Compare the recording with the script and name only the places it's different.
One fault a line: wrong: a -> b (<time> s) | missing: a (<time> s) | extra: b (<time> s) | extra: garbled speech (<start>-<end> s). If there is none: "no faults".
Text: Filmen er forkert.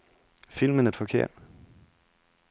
no faults